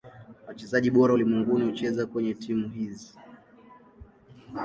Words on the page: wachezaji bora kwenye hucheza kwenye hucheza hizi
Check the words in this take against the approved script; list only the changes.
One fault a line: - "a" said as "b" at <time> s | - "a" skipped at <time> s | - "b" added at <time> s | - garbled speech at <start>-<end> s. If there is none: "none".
- "kwenye" said as "ulimwenguni" at 1.1 s
- "hucheza" said as "timu" at 2.3 s